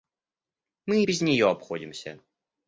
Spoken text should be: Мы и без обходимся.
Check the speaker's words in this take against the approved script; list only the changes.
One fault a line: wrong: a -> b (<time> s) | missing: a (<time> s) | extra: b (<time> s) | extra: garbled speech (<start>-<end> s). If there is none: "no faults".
extra: нее (1.2 s)